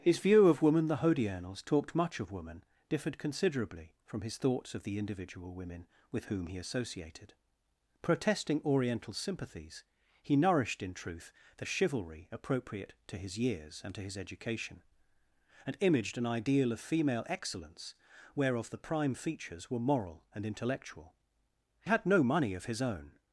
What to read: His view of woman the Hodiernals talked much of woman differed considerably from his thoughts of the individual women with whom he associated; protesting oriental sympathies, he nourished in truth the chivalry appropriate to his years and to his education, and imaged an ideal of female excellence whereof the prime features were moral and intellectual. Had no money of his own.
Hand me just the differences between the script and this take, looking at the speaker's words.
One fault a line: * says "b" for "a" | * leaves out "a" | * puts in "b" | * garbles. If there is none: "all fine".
all fine